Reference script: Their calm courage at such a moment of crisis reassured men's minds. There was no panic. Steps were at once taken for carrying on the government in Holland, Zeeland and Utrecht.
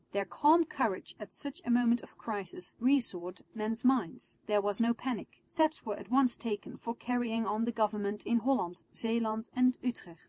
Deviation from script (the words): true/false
false